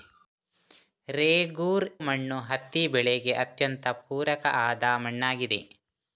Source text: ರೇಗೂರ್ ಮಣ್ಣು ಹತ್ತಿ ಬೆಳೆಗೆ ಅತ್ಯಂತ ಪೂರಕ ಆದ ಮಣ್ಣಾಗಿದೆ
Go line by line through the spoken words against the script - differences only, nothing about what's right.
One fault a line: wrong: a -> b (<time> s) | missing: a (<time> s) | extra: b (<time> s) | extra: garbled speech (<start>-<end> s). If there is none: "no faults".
no faults